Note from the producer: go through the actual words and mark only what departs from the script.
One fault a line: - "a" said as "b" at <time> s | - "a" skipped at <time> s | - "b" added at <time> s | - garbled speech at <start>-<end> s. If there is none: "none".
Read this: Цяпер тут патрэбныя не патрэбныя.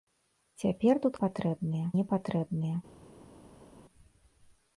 none